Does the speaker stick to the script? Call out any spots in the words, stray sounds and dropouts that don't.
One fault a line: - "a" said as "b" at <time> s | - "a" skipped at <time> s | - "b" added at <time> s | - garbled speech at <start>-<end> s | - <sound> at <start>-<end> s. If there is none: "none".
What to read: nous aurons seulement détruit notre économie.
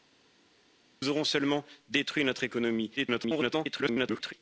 - garbled speech at 3.0-4.3 s